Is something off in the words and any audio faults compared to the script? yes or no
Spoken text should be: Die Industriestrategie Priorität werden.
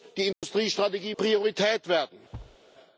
yes